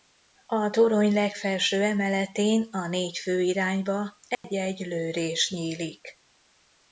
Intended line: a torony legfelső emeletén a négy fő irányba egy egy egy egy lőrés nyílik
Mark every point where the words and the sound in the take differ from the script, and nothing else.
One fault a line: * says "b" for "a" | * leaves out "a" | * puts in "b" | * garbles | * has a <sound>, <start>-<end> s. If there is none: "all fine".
* has a dropout, 4.3-4.4 s
* leaves out "egy egy"